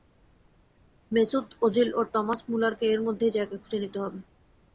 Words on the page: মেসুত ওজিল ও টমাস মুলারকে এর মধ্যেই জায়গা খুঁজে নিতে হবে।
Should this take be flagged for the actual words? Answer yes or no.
no